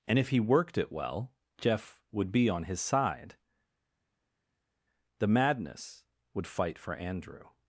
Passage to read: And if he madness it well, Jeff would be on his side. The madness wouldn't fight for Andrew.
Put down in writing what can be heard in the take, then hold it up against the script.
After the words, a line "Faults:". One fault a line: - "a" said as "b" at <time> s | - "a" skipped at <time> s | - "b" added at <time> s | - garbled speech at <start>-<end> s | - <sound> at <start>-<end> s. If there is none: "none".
And if he worked it well, Jeff would be on his side. The madness would fight for Andrew.
Faults:
- "madness" said as "worked" at 0.4 s
- "wouldn't" said as "would" at 6.3 s